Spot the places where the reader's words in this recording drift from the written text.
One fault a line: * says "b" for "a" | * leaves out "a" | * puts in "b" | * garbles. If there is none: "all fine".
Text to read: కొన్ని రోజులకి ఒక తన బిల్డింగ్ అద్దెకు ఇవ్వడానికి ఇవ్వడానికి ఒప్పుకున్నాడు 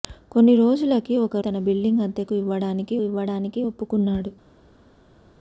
all fine